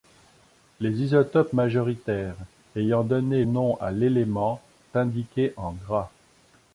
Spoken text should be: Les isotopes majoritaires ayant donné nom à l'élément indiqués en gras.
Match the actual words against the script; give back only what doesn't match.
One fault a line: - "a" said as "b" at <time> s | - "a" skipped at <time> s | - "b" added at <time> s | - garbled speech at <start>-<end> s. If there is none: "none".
none